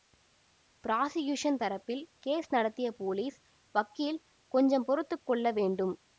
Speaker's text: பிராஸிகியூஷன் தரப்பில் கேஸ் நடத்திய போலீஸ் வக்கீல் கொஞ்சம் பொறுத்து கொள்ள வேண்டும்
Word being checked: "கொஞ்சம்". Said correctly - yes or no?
yes